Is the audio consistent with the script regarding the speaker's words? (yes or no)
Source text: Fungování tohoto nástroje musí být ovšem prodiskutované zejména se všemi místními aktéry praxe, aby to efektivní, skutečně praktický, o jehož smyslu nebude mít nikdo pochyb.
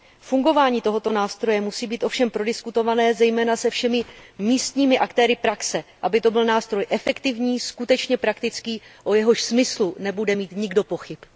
no